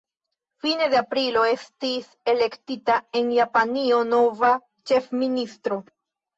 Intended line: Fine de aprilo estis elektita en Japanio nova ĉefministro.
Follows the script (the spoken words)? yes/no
yes